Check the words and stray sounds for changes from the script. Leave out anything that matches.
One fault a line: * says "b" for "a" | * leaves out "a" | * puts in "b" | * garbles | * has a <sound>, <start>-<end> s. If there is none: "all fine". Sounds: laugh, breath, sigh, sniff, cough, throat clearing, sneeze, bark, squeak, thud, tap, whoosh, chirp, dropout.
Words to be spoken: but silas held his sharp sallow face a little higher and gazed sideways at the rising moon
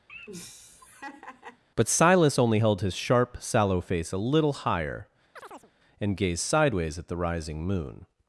* has a laugh, 0.1-1.6 s
* puts in "only"
* has a chirp, 5.4-5.7 s